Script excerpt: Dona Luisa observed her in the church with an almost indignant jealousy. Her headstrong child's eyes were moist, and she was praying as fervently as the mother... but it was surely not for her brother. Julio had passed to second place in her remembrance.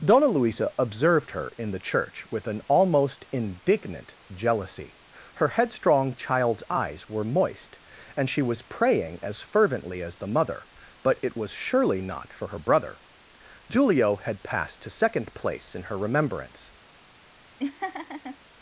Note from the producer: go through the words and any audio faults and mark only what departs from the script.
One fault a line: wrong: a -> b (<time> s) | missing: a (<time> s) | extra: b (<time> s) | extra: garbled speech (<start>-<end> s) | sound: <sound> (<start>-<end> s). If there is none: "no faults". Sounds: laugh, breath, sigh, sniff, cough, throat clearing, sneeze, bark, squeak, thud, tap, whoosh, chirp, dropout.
sound: laugh (17.6-18.4 s)